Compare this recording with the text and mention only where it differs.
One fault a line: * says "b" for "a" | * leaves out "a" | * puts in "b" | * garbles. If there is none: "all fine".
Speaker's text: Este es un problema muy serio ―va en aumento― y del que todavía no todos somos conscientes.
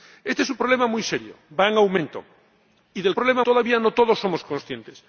* says "problema" for "que"